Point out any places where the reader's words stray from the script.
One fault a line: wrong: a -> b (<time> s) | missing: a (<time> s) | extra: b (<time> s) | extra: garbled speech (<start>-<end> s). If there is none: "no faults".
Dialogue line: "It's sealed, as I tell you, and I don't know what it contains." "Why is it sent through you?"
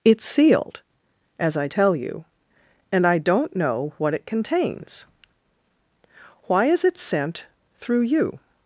no faults